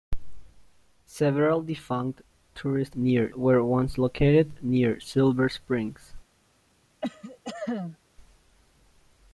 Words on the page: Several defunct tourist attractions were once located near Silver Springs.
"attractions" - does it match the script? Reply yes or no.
no